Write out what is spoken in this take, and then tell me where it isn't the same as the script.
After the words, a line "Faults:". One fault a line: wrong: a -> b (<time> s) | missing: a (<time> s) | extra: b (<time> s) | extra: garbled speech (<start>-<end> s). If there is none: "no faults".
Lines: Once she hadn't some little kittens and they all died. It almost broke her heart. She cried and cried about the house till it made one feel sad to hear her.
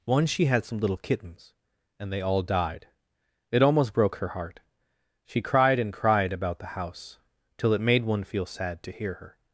Once she had some little kittens and they all died. It almost broke her heart. She cried and cried about the house till it made one feel sad to hear her.
Faults:
wrong: hadn't -> had (0.5 s)